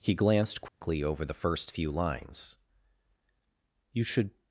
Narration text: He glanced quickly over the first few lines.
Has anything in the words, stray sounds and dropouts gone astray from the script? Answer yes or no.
yes